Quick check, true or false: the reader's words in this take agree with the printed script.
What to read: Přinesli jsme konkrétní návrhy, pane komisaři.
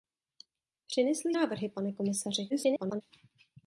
false